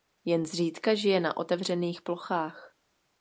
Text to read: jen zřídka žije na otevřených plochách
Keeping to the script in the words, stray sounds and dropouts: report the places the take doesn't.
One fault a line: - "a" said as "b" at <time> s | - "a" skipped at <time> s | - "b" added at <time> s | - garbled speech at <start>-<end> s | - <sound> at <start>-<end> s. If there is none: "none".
none